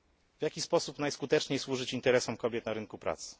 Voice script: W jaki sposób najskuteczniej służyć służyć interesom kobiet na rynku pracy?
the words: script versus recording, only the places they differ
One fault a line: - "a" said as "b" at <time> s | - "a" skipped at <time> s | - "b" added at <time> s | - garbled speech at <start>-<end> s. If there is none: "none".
- "służyć" skipped at 1.9 s